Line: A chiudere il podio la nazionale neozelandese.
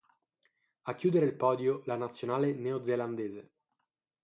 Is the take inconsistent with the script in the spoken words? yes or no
no